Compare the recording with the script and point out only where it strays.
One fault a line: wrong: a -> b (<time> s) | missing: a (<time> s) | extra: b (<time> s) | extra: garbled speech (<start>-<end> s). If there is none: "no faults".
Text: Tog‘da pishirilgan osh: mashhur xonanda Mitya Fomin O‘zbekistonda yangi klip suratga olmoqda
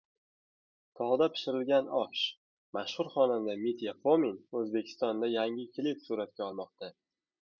no faults